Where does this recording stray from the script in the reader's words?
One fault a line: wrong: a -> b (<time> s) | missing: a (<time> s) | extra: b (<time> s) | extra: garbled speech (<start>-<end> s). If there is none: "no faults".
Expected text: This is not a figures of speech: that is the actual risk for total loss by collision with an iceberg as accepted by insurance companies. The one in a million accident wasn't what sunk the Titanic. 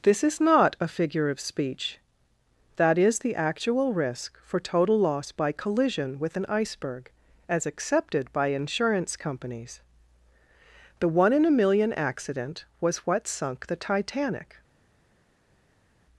wrong: figures -> figure (0.9 s)
wrong: wasn't -> was (12.8 s)